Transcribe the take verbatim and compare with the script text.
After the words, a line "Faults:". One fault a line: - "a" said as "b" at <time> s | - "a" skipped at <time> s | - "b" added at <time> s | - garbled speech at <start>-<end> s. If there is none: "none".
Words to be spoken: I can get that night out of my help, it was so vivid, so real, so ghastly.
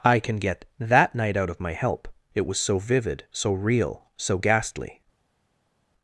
I can get that night out of my help, it was so vivid, so real, so ghastly.
Faults:
none